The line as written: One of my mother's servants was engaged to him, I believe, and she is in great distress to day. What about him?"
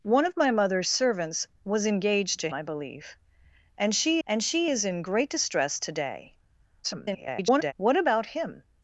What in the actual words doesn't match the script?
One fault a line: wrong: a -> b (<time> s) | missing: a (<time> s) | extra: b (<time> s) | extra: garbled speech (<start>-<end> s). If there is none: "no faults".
missing: him (2.5 s)
extra: and she (4.3 s)
extra: garbled speech (6.8-7.7 s)